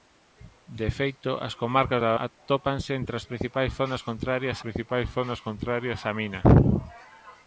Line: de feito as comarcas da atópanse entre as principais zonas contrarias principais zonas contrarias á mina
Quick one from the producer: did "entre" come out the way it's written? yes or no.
yes